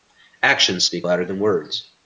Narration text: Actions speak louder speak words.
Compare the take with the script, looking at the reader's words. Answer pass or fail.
fail